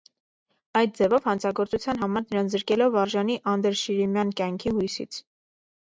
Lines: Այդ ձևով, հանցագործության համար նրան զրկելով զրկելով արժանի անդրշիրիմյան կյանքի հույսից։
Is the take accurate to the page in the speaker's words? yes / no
no